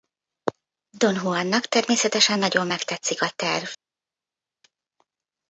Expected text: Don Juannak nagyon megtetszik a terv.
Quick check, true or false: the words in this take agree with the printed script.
false